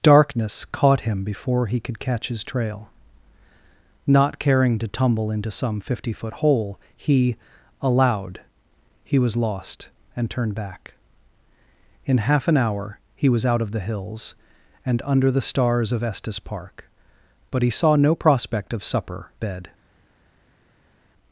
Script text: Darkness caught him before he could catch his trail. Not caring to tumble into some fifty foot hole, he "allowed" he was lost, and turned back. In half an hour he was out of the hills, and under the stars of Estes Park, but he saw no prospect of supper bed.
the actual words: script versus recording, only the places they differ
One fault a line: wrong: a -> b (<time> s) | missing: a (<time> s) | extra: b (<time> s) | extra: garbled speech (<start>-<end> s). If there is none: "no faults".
no faults